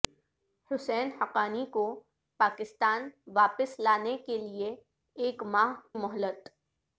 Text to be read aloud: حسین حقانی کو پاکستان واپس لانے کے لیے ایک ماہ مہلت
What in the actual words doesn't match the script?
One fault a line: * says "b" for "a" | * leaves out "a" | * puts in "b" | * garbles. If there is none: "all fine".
all fine